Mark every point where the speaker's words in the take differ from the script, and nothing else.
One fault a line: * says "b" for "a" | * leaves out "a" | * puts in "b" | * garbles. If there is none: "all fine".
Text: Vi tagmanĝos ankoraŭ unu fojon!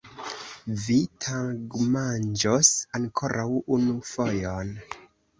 all fine